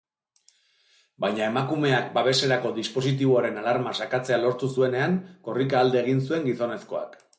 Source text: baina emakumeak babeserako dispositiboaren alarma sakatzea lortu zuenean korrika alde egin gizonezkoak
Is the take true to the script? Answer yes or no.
no